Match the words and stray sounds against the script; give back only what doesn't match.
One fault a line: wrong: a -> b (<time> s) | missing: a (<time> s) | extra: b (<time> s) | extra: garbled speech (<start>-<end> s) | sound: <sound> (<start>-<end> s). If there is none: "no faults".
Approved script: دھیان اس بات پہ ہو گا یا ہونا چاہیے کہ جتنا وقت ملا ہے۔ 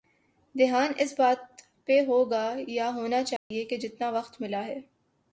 sound: dropout (3.4-3.5 s)